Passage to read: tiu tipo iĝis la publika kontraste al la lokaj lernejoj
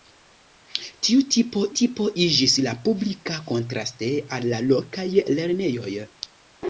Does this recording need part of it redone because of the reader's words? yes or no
yes